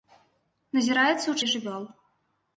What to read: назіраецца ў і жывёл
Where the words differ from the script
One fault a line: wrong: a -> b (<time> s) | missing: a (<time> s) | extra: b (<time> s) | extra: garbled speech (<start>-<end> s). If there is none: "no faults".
no faults